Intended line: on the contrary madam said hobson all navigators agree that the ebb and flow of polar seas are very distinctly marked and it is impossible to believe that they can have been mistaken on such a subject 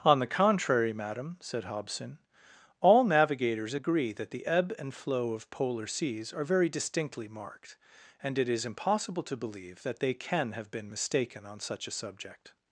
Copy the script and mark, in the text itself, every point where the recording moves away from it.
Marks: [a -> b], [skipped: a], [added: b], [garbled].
on the contrary madam said hobson all navigators agree that the ebb and flow of polar seas are very distinctly marked and it is impossible to believe that they can have been mistaken on such a subject